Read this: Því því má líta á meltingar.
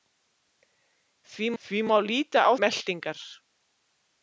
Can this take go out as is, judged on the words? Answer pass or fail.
pass